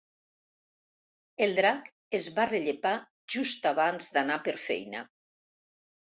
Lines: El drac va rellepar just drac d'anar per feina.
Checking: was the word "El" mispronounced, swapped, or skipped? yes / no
no